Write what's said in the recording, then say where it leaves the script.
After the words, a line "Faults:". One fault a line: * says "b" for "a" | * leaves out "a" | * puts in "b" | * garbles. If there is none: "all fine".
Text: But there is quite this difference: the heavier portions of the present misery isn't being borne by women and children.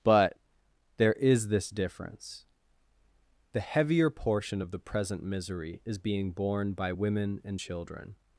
But there is this difference: the heavier portion of the present misery is being borne by women and children.
Faults:
* leaves out "quite"
* says "portion" for "portions"
* says "is" for "isn't"